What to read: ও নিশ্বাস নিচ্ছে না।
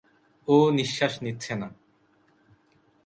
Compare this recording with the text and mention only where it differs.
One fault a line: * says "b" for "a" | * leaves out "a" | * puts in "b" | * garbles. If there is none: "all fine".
all fine